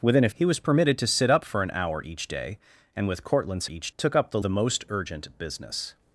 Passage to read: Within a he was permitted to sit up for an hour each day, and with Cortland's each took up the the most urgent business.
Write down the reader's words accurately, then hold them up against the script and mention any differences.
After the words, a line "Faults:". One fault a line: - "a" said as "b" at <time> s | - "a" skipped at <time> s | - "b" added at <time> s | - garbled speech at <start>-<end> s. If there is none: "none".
Within a he was permitted to sit up for an hour each day, and with Cortland's each took up the the most urgent business.
Faults:
none